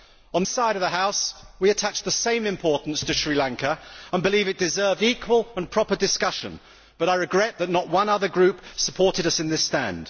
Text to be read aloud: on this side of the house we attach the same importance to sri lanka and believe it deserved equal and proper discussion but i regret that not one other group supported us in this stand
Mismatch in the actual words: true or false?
true